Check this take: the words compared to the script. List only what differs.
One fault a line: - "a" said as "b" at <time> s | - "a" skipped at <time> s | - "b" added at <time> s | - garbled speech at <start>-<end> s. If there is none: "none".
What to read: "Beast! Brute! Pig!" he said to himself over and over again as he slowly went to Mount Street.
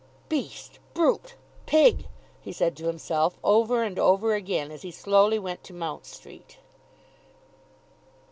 none